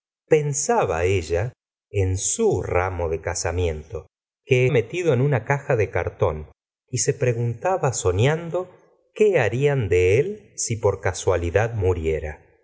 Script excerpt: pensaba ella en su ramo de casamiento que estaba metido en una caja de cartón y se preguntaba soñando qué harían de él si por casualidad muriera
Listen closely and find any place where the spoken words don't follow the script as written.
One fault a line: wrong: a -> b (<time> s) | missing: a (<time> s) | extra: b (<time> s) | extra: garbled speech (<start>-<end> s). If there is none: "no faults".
missing: estaba (4.7 s)